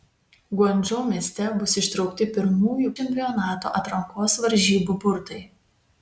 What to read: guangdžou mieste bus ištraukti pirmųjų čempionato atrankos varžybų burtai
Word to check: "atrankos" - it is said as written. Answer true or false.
true